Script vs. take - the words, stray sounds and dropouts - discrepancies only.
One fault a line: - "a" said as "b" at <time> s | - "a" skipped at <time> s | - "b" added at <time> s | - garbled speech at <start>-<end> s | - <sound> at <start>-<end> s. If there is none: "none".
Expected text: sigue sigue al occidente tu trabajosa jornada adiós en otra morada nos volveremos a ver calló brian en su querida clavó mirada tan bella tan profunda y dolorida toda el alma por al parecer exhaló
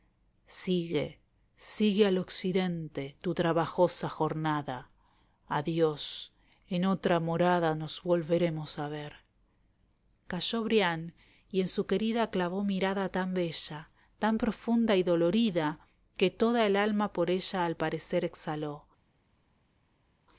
- "y" added at 11.5 s
- "que" added at 16.2 s
- "ella" added at 17.3 s